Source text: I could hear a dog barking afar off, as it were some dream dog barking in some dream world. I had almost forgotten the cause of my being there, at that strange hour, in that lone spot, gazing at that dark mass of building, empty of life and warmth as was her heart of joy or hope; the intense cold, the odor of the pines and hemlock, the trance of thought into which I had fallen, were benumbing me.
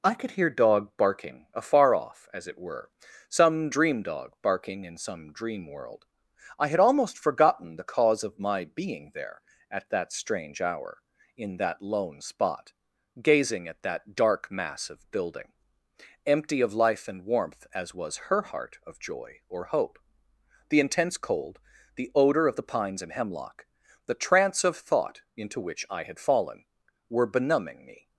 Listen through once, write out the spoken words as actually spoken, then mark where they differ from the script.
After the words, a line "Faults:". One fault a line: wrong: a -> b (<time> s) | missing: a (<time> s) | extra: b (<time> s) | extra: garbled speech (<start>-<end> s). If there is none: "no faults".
I could hear dog barking afar off, as it were some dream dog barking in some dream world. I had almost forgotten the cause of my being there, at that strange hour, in that lone spot, gazing at that dark mass of building, empty of life and warmth as was her heart of joy or hope; the intense cold, the odor of the pines and hemlock, the trance of thought into which I had fallen, were benumbing me.
Faults:
missing: a (0.5 s)